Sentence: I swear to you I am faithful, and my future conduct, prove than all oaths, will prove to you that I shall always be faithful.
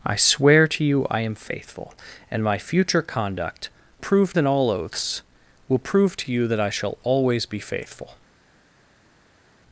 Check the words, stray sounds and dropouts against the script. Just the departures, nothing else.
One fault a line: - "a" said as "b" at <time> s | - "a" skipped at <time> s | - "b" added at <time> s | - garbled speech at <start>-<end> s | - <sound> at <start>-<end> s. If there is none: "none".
none